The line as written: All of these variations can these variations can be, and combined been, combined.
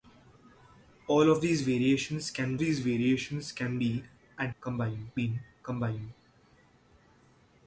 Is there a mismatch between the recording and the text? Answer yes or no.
no